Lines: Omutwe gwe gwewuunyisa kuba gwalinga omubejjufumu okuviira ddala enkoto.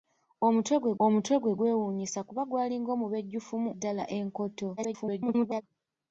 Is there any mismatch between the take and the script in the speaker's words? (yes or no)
yes